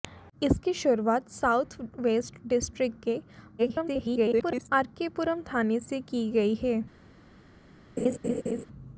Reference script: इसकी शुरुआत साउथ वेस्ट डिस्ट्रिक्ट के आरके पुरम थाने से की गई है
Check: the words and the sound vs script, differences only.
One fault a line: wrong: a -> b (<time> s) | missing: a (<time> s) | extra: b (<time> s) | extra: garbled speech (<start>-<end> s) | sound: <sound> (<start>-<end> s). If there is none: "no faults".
extra: garbled speech (3.6-4.7 s)
sound: laugh (8.0-8.7 s)